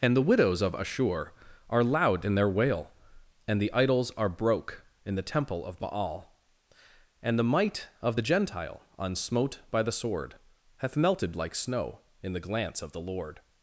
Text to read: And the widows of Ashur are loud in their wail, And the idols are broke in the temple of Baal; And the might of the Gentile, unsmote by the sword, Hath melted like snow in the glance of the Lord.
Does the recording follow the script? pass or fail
pass